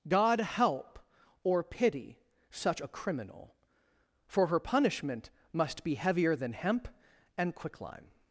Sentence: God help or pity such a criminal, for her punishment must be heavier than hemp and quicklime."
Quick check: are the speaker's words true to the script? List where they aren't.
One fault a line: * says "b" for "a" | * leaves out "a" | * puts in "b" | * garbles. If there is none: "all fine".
all fine